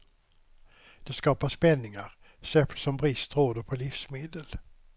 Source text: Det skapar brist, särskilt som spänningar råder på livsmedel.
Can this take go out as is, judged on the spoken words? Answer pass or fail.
fail